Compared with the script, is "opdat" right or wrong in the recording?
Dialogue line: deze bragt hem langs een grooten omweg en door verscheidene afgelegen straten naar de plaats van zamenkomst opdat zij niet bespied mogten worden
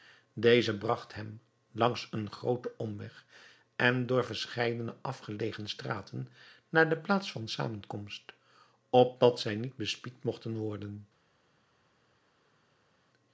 right